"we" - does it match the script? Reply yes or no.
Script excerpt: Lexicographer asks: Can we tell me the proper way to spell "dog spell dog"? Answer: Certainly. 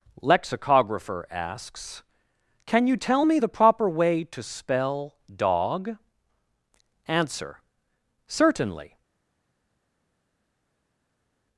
no